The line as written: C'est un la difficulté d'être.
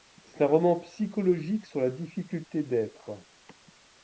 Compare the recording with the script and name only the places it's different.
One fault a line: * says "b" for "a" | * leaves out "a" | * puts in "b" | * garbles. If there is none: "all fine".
* puts in "roman psychologique sur"